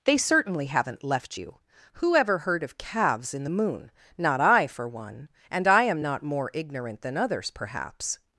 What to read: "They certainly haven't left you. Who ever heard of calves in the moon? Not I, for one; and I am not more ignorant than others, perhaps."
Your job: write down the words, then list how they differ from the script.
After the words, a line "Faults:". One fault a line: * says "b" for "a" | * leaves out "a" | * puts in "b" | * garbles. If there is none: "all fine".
"They certainly haven't left you. Who ever heard of calves in the moon? Not I, for one; and I am not more ignorant than others, perhaps."
Faults:
all fine